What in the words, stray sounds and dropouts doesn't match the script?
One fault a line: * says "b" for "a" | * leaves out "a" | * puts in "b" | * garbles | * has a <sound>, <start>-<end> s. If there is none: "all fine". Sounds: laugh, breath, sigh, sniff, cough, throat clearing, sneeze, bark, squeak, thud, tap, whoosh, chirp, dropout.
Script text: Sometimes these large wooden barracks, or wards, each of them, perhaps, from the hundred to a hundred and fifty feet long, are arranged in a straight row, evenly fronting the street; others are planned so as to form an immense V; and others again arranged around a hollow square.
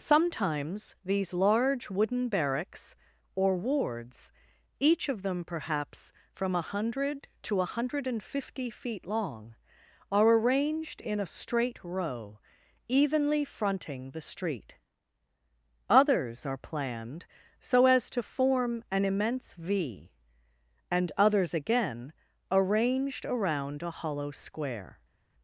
* says "a" for "the"